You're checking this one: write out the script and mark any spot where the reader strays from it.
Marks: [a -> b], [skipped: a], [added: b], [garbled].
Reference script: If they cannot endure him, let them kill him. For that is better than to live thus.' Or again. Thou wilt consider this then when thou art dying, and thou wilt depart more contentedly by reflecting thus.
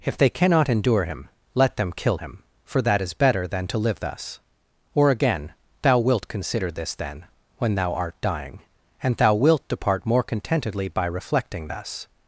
If they cannot endure him, let them kill him. For that is better than to live thus.' Or again. Thou wilt consider this then when thou art dying, and thou wilt depart more contentedly by reflecting thus.